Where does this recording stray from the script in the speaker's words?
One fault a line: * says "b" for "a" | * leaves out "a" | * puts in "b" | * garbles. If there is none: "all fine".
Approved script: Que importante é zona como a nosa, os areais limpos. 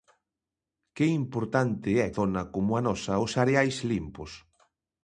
all fine